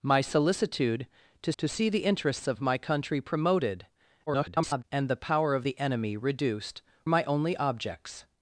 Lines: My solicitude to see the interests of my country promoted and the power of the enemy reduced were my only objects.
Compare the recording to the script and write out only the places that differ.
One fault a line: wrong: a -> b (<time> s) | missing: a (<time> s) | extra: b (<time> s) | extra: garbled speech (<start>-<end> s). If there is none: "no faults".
extra: to (1.6 s)
extra: garbled speech (4.3-4.8 s)
missing: were (6.8 s)